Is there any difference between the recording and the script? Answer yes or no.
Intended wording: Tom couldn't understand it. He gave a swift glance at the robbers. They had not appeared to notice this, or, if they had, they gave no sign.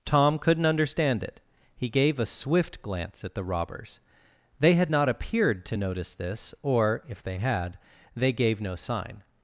no